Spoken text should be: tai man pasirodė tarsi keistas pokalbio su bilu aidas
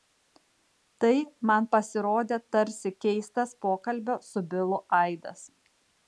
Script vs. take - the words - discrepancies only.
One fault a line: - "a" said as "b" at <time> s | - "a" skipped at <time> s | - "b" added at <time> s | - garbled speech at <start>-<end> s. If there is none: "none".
none